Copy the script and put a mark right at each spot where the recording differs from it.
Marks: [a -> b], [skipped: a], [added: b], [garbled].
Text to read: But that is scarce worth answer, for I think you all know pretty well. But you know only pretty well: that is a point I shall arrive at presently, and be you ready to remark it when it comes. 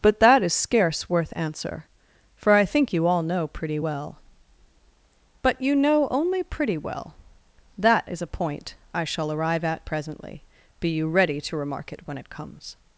But that is scarce worth answer, for I think you all know pretty well. But you know only pretty well: that is a point I shall arrive at presently, [skipped: and] be you ready to remark it when it comes.